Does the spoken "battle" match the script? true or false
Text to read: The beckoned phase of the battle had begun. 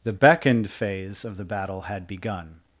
true